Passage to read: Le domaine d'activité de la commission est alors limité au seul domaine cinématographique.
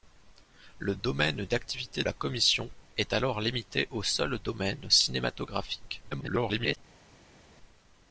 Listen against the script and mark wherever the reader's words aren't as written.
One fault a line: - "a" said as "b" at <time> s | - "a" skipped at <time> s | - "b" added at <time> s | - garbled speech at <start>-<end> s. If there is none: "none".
- "de" skipped at 2.0 s
- garbled speech at 6.1-6.8 s